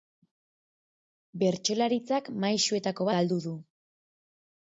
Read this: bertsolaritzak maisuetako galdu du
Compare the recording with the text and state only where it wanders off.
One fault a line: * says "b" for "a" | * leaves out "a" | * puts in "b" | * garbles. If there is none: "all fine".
all fine